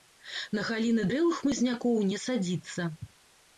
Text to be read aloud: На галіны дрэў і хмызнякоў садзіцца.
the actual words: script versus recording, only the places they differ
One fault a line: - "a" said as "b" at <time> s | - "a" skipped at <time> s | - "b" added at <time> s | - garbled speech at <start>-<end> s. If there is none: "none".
- "не" added at 2.1 s